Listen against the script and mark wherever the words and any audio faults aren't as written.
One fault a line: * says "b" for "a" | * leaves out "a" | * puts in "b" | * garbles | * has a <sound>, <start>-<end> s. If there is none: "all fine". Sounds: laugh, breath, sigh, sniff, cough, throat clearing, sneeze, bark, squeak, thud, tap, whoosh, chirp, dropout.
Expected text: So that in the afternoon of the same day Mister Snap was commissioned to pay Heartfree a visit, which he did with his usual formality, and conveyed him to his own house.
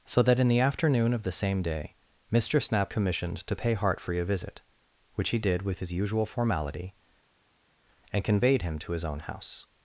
* leaves out "was"